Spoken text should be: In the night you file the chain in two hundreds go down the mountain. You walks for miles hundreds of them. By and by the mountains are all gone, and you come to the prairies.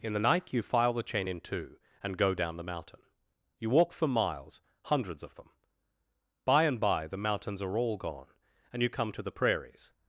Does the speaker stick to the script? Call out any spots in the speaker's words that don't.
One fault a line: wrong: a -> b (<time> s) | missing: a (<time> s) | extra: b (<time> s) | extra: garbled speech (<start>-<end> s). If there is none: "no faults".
wrong: hundreds -> and (2.0 s)
wrong: walks -> walk (3.7 s)